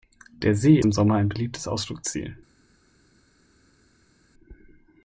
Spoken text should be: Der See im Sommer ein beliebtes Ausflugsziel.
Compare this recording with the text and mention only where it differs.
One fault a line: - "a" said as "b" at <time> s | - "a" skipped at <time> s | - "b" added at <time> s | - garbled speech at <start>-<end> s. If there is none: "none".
none